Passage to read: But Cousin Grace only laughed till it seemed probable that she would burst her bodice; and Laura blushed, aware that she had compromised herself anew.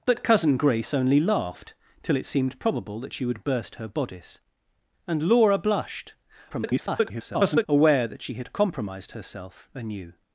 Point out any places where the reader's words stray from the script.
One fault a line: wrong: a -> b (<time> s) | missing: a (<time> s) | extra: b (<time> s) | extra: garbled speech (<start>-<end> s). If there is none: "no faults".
extra: garbled speech (6.5-7.7 s)